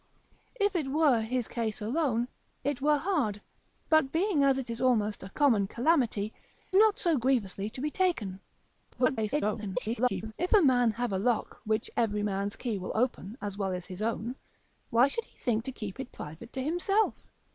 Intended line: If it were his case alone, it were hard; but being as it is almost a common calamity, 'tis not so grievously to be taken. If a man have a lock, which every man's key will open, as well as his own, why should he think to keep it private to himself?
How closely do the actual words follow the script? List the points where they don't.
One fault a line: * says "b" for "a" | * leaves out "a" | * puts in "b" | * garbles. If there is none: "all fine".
* leaves out "tis"
* garbles